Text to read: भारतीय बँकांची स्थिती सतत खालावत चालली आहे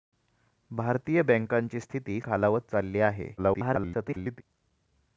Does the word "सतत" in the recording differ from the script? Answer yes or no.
yes